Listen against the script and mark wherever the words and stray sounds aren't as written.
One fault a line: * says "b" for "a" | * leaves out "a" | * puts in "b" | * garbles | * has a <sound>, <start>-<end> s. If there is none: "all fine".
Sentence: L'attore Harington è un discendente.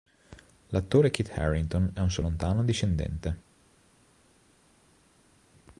* puts in "Kit"
* puts in "suo lontano"